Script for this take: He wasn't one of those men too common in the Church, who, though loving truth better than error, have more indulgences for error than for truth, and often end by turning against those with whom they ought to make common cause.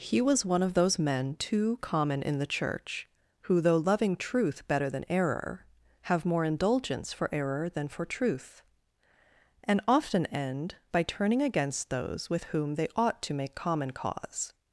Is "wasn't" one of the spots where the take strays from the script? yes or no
yes